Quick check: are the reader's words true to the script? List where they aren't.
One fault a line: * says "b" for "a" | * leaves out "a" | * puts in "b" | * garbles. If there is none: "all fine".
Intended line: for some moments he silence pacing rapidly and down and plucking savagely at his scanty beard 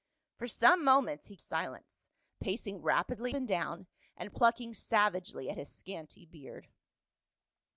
all fine